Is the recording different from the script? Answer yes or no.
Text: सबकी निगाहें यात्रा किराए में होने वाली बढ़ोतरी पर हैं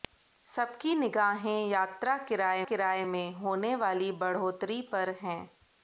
yes